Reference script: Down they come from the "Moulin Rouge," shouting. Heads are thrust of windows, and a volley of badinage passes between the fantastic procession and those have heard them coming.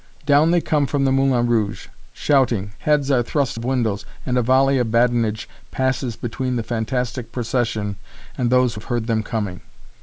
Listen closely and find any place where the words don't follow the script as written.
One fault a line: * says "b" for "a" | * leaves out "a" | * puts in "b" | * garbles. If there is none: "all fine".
all fine